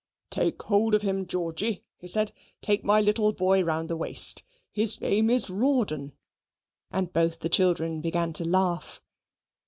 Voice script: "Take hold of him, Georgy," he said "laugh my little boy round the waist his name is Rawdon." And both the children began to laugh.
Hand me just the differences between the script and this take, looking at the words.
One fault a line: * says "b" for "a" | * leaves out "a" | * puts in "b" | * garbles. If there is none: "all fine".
* says "take" for "laugh"